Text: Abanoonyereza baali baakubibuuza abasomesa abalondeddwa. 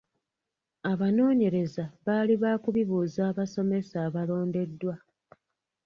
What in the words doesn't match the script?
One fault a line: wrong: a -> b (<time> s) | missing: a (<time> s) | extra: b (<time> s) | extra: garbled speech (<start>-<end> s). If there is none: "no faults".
no faults